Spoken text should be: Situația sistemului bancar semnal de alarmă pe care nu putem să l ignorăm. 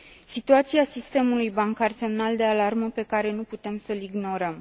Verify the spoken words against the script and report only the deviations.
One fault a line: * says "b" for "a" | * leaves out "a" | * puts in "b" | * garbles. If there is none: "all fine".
all fine